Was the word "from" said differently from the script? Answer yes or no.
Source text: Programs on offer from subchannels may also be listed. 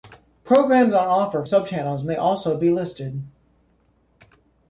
yes